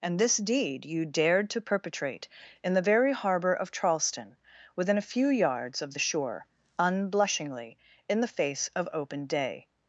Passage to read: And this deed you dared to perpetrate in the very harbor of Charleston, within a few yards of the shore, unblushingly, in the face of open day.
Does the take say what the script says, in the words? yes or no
yes